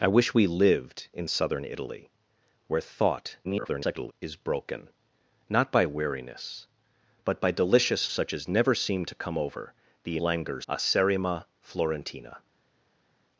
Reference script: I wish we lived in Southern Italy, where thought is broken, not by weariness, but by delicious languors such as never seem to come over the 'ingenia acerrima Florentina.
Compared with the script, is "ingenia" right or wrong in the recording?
wrong